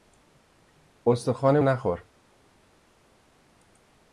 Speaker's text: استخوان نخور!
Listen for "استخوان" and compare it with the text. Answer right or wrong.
right